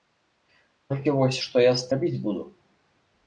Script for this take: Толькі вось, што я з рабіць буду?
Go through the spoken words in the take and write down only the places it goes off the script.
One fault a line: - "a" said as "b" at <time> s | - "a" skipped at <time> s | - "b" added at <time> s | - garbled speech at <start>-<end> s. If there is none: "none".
none